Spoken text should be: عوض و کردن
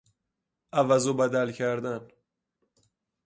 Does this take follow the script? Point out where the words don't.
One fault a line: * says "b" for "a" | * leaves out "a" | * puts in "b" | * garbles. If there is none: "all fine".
* puts in "بدل"